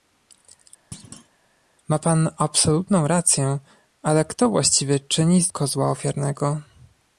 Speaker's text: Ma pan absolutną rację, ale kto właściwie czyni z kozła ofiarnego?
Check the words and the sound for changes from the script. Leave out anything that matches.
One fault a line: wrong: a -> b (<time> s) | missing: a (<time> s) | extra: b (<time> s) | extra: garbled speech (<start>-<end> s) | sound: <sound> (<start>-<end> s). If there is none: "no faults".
sound: thud (0.9-1.3 s)